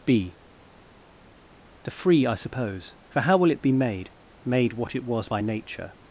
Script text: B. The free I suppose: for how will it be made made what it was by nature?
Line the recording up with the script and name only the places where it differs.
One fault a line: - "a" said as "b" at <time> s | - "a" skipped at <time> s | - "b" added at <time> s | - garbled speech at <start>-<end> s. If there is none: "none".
none